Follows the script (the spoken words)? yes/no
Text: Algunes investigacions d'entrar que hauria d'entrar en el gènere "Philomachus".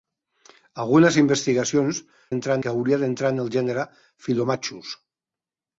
yes